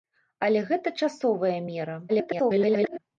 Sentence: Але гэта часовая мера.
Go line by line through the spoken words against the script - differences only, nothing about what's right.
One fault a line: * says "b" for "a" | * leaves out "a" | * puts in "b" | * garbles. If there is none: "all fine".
* garbles